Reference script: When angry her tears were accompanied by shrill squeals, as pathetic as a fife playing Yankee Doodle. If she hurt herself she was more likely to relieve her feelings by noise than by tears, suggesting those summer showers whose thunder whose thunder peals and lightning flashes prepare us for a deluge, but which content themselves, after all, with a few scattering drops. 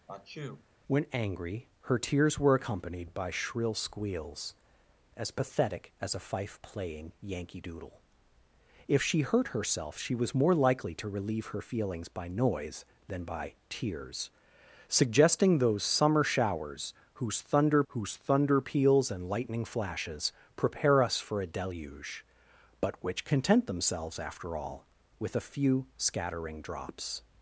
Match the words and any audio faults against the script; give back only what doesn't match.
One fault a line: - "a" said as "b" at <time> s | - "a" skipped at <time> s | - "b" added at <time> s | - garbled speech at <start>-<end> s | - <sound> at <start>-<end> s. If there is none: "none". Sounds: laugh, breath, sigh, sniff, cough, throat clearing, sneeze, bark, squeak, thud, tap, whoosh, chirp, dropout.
- sneeze at 0.1-0.7 s